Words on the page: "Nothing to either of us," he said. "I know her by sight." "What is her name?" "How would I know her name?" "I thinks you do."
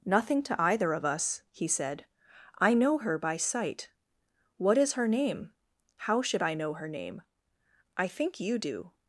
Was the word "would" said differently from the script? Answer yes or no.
yes